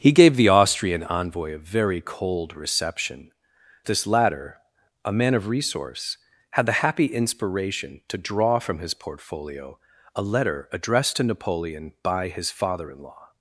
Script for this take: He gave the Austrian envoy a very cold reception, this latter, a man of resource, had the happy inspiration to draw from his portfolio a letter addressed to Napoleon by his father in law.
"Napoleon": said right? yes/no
yes